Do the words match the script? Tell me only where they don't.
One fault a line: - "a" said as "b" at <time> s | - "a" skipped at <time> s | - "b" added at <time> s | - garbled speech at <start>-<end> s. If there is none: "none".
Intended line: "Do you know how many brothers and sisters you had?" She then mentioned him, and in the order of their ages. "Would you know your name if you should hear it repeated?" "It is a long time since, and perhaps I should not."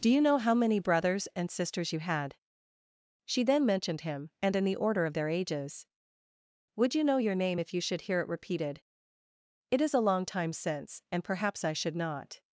none